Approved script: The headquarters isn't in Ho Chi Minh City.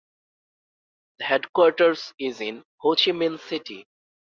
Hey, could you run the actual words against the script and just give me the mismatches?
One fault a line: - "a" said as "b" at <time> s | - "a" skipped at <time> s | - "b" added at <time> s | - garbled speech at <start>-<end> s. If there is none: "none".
- "isn't" said as "is" at 2.2 s